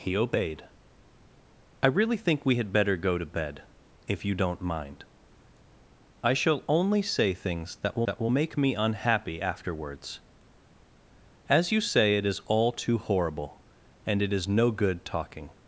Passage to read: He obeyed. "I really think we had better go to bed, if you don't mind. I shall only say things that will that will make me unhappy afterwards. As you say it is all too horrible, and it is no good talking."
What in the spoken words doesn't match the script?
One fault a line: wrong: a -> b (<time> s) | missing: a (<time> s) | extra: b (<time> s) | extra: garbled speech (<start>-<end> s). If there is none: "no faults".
no faults